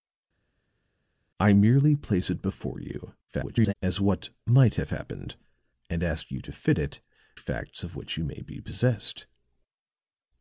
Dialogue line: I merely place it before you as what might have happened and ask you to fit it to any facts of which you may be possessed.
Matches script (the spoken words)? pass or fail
fail